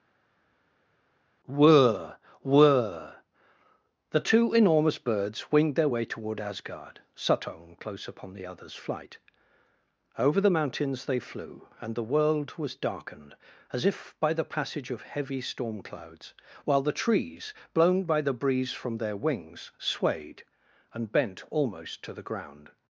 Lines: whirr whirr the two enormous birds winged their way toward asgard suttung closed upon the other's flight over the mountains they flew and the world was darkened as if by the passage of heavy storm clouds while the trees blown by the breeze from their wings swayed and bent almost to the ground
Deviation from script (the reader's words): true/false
true